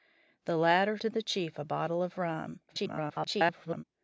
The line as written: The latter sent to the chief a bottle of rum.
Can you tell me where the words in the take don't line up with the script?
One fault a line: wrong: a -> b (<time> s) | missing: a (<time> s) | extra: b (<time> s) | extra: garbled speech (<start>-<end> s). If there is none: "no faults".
missing: sent (1.0 s)
extra: garbled speech (2.7-3.8 s)